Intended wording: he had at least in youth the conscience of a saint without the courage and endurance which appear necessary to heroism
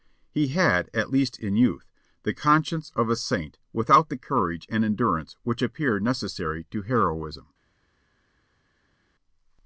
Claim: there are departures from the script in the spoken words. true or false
false